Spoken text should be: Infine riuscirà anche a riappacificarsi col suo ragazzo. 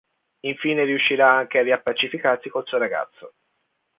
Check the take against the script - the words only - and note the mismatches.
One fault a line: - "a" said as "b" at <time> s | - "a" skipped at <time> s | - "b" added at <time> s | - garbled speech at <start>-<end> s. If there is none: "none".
none